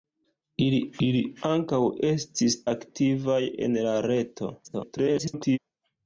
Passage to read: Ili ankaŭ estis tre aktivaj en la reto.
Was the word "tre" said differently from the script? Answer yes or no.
yes